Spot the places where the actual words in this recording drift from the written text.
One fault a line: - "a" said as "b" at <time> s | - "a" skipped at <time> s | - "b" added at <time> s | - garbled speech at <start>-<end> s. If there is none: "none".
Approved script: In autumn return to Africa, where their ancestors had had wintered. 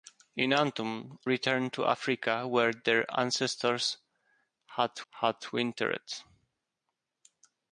none